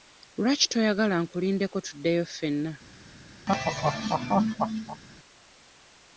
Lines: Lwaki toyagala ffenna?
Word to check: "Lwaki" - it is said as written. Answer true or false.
true